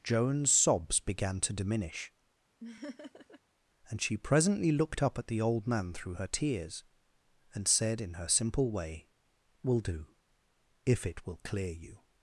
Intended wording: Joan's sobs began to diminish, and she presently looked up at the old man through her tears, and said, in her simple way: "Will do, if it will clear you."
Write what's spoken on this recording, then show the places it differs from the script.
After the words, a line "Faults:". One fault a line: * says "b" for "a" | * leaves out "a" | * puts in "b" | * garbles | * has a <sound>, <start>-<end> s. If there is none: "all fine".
Joan's sobs began to diminish, and she presently looked up at the old man through her tears, and said, in her simple way: "Will do, if it will clear you."
Faults:
* has a laugh, 2.6-3.4 s